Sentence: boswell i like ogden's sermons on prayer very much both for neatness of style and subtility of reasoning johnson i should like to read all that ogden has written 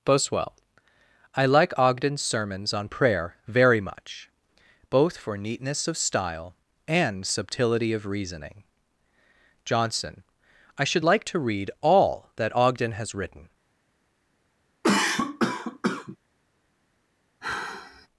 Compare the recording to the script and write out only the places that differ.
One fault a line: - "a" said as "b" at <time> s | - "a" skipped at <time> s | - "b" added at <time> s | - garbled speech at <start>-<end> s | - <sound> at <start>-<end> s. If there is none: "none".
- cough at 14.8-16.2 s
- sigh at 17.4-18.1 s